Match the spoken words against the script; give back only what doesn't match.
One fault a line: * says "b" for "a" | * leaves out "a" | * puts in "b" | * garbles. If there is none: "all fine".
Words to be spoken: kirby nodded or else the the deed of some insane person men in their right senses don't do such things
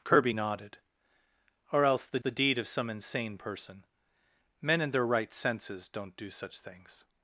all fine